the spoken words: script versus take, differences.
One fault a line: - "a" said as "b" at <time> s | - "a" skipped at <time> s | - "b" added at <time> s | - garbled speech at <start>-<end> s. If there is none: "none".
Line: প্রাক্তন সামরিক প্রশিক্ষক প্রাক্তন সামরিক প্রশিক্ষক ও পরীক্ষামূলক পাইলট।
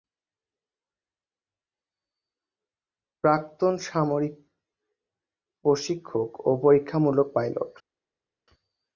- "প্রাক্তন সামরিক প্রশিক্ষক" skipped at 6.3 s